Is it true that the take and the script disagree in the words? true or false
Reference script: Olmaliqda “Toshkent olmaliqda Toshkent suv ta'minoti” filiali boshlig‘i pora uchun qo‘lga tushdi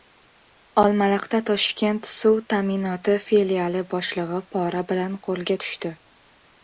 true